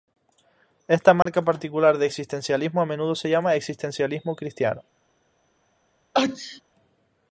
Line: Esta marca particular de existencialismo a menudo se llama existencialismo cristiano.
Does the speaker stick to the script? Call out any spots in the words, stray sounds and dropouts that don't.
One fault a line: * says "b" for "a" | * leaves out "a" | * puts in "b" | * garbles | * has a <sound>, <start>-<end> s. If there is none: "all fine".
* has a dropout, 1.2-1.3 s
* has a sneeze, 6.1-6.6 s